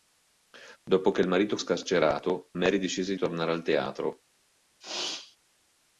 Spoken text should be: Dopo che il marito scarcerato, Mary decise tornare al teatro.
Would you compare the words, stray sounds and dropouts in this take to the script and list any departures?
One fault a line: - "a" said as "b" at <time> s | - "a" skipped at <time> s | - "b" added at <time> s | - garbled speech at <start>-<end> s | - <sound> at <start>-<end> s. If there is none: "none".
- sneeze at 4.8-5.4 s